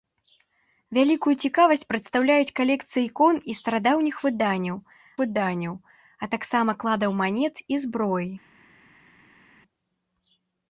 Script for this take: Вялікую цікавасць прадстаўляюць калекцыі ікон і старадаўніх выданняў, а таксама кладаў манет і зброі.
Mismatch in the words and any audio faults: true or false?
true